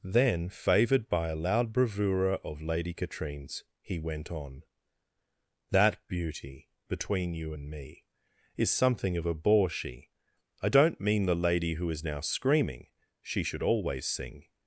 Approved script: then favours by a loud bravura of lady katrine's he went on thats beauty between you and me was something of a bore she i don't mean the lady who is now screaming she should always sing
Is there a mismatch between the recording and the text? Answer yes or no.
yes